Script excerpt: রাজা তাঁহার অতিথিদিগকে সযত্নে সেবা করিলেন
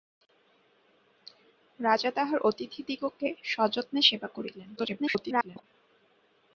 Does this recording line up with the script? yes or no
no